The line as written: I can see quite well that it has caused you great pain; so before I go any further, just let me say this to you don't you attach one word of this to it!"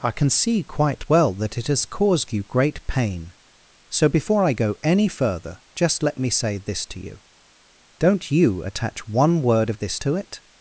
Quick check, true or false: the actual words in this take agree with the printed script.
true